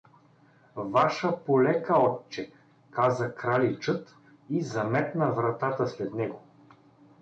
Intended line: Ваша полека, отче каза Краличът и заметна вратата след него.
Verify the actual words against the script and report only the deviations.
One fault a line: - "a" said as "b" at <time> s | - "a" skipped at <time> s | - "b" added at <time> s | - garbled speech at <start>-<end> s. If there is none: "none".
none